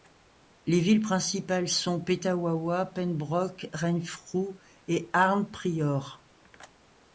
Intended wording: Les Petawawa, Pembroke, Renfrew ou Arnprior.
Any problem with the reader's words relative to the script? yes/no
yes